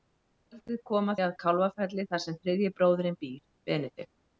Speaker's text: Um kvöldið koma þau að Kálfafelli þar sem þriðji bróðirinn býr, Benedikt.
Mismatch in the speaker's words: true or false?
true